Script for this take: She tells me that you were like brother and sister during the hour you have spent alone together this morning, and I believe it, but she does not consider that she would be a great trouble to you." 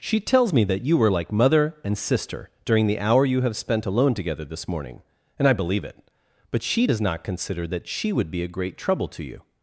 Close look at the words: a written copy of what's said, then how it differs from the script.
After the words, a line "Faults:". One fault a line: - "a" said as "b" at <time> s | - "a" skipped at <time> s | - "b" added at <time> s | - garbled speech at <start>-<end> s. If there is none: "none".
She tells me that you were like mother and sister during the hour you have spent alone together this morning, and I believe it, but she does not consider that she would be a great trouble to you."
Faults:
- "brother" said as "mother" at 1.3 s